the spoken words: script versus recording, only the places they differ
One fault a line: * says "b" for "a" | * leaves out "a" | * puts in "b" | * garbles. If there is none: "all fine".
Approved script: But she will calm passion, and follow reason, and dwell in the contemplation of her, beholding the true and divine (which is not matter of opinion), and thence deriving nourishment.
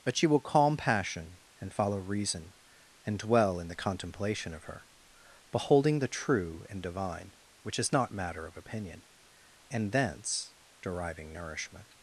all fine